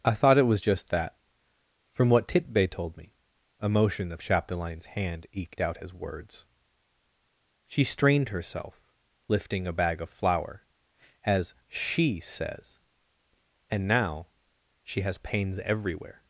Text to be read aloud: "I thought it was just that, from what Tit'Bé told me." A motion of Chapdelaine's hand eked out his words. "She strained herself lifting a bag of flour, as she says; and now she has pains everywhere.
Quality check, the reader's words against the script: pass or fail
pass